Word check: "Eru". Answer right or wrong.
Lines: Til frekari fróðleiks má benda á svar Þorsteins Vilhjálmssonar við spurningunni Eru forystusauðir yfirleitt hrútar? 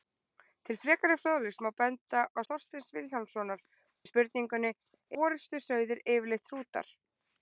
wrong